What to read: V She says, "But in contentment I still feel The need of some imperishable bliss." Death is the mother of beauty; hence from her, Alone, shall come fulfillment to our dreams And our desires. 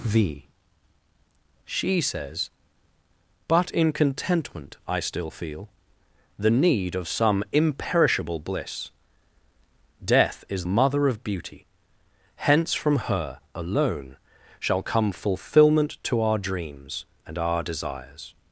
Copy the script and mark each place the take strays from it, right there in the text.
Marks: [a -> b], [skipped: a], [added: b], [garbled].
V She says, "But in contentment I still feel The need of some imperishable bliss." Death is [skipped: the] mother of beauty; hence from her, Alone, shall come fulfillment to our dreams And our desires.